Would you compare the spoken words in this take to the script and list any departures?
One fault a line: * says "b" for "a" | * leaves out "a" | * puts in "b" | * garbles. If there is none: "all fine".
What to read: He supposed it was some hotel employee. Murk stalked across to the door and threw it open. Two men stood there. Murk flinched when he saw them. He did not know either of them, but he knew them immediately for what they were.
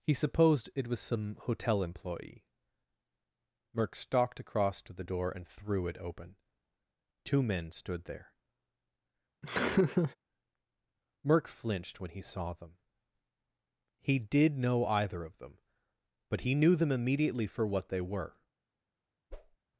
* leaves out "not"